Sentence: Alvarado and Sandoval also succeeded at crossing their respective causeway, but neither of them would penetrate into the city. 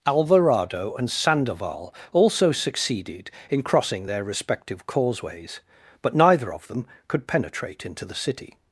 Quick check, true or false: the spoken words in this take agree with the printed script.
false